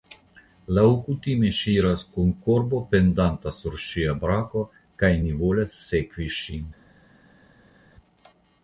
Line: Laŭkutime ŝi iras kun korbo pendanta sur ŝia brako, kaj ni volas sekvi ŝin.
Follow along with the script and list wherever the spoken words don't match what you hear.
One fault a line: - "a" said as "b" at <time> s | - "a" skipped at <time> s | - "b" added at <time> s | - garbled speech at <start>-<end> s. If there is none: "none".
none